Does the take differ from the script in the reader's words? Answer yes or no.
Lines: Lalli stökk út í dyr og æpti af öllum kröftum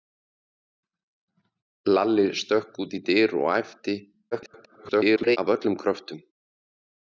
yes